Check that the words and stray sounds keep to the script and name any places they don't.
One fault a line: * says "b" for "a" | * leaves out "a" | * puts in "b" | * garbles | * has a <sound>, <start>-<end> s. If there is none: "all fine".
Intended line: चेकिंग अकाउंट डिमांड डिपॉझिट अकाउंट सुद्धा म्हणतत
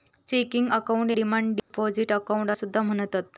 * has a dropout, 1.6-1.7 s